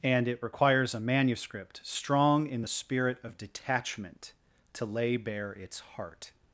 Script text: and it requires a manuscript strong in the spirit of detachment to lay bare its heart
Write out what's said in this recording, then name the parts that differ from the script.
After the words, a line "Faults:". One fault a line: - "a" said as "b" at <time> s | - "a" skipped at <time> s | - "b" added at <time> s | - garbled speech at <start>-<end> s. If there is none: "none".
and it requires a manuscript strong in the spirit of detachment to lay bare its heart
Faults:
none